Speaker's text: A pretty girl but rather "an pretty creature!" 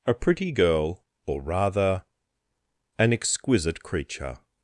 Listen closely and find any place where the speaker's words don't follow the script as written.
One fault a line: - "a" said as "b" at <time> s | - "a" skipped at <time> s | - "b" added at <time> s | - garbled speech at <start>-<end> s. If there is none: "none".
- "but" said as "or" at 1.3 s
- "pretty" said as "exquisite" at 3.1 s